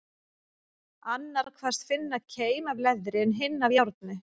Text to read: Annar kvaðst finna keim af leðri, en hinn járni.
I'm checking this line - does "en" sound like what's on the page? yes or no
yes